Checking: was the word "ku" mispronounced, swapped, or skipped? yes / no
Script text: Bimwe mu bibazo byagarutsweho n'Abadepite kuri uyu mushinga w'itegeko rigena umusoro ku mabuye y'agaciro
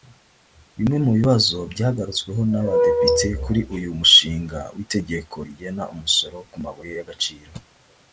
no